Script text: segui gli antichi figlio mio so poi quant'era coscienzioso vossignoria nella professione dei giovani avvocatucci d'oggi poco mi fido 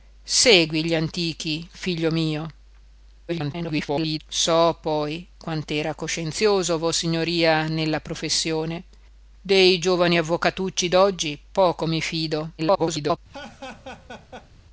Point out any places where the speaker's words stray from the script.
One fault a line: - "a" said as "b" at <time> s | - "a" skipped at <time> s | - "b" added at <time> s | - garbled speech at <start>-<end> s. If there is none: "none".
- garbled speech at 3.3-4.2 s
- garbled speech at 12.6-13.2 s